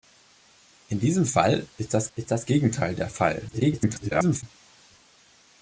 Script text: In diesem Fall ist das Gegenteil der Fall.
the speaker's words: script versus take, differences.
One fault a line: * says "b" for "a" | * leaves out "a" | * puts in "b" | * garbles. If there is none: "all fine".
* puts in "ist das"
* garbles